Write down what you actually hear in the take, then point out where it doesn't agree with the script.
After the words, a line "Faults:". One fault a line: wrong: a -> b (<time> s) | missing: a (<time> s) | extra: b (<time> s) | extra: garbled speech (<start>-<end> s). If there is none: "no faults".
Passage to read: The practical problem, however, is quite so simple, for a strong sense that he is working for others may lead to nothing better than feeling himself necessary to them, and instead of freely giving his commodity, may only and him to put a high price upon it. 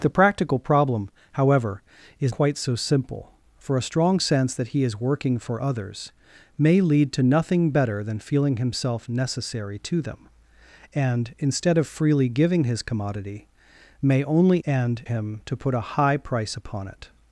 The practical problem, however, is quite so simple, for a strong sense that he is working for others may lead to nothing better than feeling himself necessary to them, and instead of freely giving his commodity, may only and him to put a high price upon it.
Faults:
no faults